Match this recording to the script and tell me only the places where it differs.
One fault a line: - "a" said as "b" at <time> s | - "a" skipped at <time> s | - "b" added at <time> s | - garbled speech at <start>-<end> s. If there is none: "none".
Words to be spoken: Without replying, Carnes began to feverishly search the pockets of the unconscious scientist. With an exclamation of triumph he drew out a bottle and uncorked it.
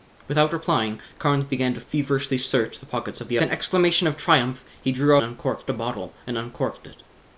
- "unconscious scientist With" skipped at 3.4 s
- "out" said as "uncorked" at 5.2 s